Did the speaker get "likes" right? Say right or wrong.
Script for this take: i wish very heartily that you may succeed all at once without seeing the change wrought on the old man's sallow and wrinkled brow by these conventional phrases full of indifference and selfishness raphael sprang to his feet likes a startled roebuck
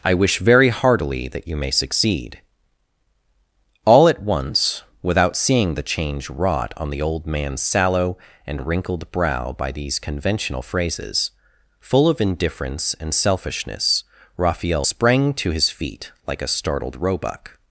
wrong